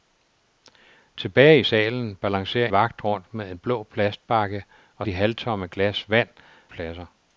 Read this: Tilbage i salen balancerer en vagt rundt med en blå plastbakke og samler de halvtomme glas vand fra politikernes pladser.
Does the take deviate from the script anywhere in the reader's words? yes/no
yes